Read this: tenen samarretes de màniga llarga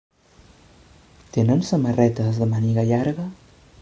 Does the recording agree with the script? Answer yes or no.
yes